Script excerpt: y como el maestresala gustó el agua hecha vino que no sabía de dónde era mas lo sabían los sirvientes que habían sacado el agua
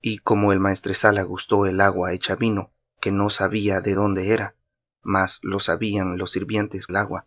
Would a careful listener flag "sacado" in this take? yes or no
yes